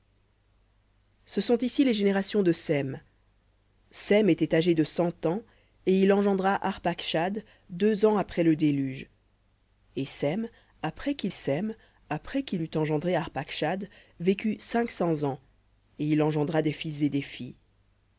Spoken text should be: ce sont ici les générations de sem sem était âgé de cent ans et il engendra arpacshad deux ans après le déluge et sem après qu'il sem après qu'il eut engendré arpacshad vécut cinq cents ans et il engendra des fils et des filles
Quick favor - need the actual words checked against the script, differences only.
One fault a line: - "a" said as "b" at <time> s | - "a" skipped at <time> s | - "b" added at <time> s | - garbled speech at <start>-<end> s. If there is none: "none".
none